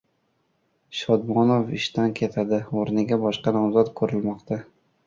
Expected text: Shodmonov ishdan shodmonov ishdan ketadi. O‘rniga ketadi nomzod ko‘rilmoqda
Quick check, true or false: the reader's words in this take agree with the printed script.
false